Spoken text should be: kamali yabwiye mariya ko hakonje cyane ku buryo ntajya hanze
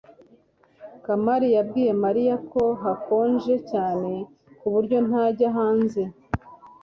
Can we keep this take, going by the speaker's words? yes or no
yes